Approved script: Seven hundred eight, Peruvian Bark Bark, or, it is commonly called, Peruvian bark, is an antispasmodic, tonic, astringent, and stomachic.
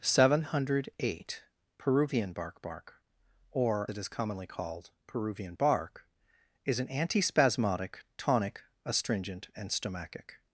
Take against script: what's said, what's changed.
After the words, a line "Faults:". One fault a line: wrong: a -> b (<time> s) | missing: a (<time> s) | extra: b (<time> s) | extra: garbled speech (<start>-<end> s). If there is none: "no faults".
Seven hundred eight, Peruvian Bark Bark, or, it is commonly called, Peruvian bark, is an antispasmodic, tonic, astringent, and stomachic.
Faults:
no faults